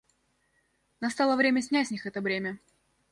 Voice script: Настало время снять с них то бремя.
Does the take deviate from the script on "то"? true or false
true